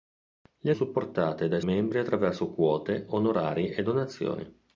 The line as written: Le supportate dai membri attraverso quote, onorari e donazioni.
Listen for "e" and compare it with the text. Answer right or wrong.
right